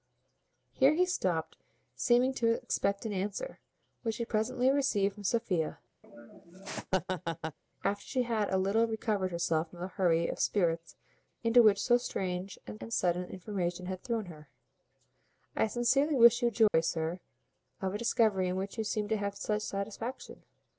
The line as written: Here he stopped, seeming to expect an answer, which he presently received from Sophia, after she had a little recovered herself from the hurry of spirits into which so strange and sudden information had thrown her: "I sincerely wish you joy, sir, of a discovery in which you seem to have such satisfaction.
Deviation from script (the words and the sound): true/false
true